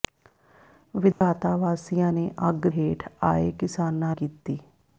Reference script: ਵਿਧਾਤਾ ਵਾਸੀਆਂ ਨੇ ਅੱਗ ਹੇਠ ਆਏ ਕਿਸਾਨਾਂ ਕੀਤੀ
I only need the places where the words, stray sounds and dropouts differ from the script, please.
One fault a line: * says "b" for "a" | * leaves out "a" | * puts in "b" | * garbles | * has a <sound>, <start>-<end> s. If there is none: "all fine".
* has a dropout, 1.1-1.2 s